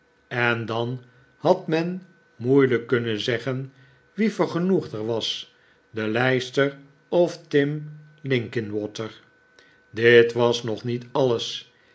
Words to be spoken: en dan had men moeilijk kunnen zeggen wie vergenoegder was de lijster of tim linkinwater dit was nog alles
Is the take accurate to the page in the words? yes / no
no